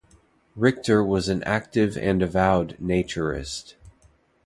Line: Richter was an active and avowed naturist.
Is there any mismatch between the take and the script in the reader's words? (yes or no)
no